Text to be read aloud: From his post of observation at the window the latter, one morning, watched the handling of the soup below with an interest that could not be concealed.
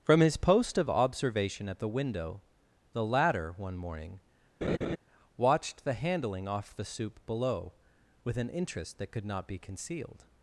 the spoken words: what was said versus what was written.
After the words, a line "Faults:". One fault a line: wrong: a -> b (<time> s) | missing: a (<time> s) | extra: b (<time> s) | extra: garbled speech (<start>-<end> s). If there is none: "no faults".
From his post of observation at the window the latter, one morning, watched the handling off the soup below with an interest that could not be concealed.
Faults:
wrong: of -> off (6.5 s)